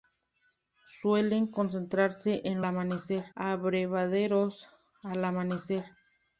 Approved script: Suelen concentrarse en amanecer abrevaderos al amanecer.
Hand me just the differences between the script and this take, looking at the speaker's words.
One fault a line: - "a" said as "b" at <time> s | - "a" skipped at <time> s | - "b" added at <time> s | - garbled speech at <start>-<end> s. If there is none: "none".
none